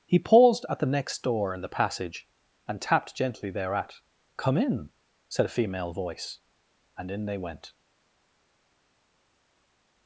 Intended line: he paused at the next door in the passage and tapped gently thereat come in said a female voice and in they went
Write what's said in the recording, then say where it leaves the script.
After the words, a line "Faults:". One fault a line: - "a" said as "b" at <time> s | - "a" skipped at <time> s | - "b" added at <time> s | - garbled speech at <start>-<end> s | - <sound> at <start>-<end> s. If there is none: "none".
he paused at the next door in the passage and tapped gently thereat come in said a female voice and in they went
Faults:
none